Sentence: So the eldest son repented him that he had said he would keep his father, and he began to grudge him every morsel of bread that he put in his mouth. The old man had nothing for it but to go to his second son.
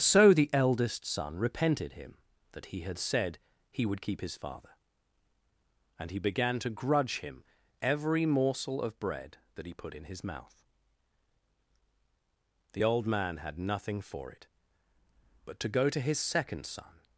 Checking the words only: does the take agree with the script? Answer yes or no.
yes